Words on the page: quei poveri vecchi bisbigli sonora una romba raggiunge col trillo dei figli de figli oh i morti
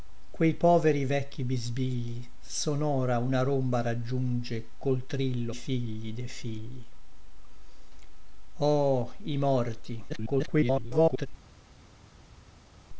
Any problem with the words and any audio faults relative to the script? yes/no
yes